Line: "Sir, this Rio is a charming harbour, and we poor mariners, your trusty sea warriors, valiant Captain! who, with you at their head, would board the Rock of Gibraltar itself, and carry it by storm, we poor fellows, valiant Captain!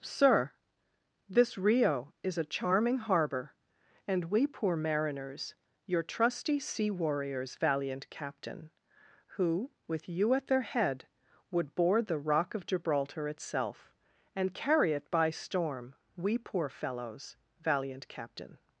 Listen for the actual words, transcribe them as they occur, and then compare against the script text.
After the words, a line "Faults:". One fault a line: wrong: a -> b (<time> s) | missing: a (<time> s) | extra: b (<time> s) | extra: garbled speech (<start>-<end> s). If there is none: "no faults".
"Sir, this Rio is a charming harbour, and we poor mariners, your trusty sea warriors, valiant Captain! who, with you at their head, would board the Rock of Gibraltar itself, and carry it by storm, we poor fellows, valiant Captain!
Faults:
no faults